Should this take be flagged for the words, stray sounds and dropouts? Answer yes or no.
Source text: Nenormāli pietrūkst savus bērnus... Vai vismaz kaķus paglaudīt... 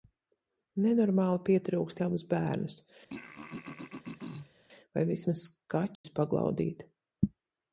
yes